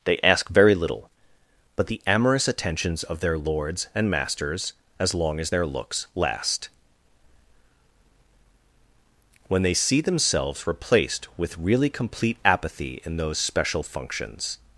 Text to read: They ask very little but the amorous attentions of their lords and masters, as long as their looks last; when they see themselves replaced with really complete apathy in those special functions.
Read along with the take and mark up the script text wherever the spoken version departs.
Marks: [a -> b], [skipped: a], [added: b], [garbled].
They ask very little but the amorous attentions of their lords and masters, as long as their looks last; when they see themselves replaced with really complete apathy in those special functions.